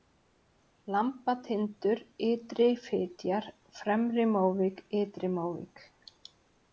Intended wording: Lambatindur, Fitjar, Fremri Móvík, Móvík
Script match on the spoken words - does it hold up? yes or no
no